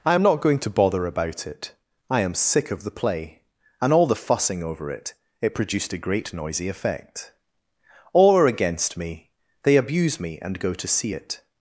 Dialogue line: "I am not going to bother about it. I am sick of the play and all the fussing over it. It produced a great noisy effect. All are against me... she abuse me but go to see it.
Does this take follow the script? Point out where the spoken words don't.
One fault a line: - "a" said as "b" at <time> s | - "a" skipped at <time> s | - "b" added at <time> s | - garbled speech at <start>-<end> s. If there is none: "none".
- "she" said as "they" at 9.6 s
- "but" said as "and" at 10.4 s